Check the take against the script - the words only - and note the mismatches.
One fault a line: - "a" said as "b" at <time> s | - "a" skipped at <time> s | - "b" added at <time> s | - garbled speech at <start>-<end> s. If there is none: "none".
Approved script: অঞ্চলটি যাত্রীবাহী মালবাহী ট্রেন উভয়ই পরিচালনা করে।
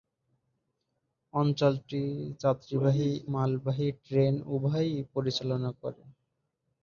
none